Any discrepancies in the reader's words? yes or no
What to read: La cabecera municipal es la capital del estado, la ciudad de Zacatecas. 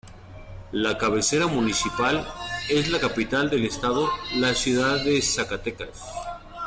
no